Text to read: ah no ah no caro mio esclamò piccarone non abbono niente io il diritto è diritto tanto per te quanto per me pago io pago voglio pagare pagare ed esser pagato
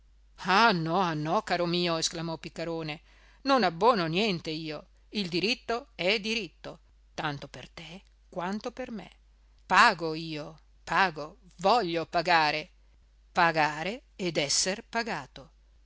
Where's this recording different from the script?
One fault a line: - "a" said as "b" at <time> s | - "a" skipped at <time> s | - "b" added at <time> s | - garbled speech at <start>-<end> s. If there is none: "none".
none